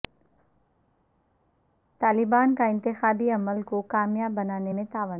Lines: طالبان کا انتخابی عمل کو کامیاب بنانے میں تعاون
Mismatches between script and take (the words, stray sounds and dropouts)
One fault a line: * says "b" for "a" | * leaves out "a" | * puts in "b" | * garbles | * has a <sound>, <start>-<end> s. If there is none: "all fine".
all fine